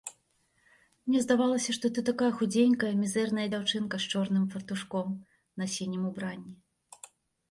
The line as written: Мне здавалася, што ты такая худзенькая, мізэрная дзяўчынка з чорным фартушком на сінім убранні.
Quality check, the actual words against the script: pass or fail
pass